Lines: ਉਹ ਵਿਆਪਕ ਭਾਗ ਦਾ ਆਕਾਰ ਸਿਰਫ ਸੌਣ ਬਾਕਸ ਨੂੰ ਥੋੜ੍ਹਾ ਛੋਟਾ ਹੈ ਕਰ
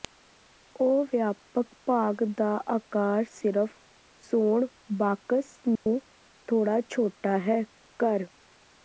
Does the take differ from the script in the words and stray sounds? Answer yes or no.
yes